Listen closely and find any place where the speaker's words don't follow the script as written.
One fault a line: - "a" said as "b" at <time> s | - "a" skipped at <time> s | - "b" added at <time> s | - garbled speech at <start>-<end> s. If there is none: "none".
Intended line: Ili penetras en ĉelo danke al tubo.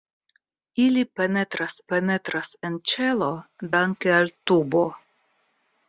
- "penetras" added at 1.9 s